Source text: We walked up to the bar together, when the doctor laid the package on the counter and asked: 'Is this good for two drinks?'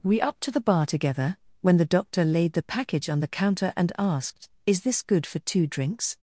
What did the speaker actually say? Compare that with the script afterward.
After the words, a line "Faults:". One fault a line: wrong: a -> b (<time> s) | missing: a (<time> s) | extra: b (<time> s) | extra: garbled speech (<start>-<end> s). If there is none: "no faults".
We up to the bar together, when the doctor laid the package on the counter and asked: 'Is this good for two drinks?'
Faults:
missing: walked (0.2 s)